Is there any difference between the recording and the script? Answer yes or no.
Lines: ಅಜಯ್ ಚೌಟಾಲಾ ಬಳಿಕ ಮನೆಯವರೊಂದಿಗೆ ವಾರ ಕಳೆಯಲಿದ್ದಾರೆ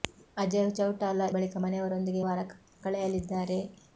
no